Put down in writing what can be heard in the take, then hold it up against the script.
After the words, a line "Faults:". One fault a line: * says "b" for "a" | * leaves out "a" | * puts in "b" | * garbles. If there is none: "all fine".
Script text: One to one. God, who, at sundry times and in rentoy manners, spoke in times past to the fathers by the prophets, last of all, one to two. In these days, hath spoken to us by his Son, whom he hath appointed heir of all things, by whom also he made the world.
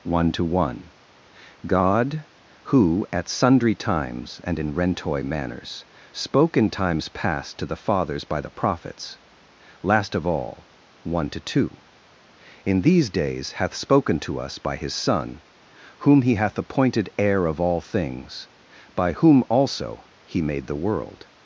One to one. God, who, at sundry times and in rentoy manners, spoke in times past to the fathers by the prophets, last of all, one to two. In these days, hath spoken to us by his Son, whom he hath appointed heir of all things, by whom also he made the world.
Faults:
all fine